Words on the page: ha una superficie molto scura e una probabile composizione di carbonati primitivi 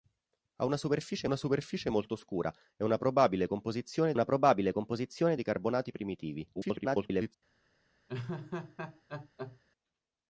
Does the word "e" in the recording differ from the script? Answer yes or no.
no